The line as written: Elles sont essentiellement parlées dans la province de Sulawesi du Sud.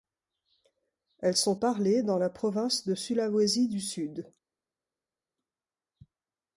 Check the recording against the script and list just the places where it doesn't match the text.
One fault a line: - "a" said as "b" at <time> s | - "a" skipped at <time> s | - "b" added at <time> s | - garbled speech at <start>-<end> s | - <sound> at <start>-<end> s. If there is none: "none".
- "essentiellement" skipped at 1.6 s